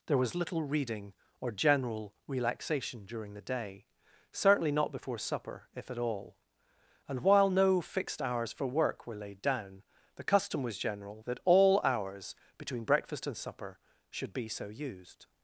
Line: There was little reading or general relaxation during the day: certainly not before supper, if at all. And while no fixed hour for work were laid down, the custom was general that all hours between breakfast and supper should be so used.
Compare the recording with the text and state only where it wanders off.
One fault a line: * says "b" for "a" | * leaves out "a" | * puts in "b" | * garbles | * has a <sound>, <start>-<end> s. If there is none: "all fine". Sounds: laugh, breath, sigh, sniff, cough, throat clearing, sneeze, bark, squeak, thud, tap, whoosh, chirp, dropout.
* says "hours" for "hour"